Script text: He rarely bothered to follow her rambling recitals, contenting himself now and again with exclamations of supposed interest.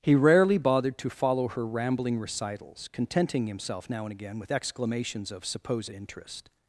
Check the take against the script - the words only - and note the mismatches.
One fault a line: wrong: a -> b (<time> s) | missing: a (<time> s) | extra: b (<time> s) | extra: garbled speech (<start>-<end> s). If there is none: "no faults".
no faults